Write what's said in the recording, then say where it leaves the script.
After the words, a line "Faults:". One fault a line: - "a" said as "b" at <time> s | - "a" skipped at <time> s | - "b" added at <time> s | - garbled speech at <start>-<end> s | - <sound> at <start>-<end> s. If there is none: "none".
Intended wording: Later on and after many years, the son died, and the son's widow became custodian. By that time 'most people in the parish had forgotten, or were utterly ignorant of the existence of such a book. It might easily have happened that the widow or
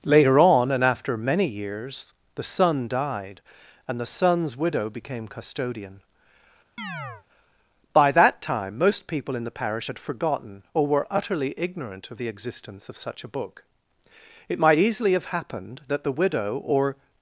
Later on and after many years, the son died, and the son's widow became custodian. By that time 'most people in the parish had forgotten, or were utterly ignorant of the existence of such a book. It might easily have happened that the widow or
Faults:
- chirp at 6.8-7.2 s